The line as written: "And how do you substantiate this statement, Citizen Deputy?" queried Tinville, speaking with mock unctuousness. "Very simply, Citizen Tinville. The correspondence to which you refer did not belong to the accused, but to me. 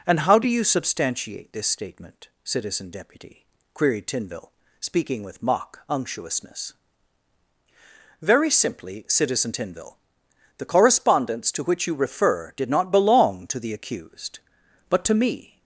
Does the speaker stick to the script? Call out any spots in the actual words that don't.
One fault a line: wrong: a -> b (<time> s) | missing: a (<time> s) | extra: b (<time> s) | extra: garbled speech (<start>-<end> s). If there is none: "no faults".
no faults